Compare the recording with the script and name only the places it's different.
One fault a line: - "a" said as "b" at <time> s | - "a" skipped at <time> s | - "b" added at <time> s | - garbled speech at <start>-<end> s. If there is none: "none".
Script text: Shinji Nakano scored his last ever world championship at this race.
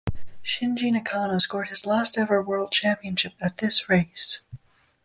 none